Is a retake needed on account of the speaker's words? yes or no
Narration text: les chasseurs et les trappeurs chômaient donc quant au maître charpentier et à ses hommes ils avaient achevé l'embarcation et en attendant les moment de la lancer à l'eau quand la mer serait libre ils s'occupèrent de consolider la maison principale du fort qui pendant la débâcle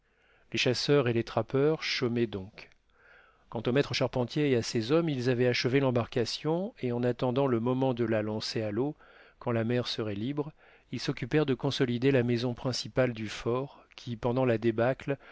yes